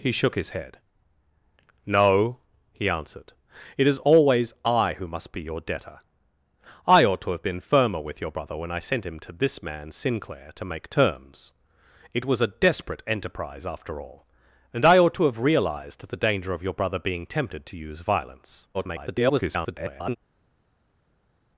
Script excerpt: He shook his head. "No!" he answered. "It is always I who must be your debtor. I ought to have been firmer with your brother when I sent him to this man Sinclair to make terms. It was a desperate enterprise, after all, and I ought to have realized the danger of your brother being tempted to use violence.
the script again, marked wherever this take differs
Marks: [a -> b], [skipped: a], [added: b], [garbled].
He shook his head. "No!" he answered. "It is always I who must be your debtor. I ought to have been firmer with your brother when I sent him to this man Sinclair to make terms. It was a desperate enterprise, after all, and I ought to have realized the danger of your brother being tempted to use violence. [garbled]